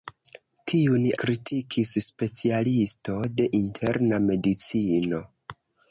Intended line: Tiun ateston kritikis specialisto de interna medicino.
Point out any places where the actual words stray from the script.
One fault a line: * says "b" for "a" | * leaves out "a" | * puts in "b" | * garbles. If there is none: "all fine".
* leaves out "ateston"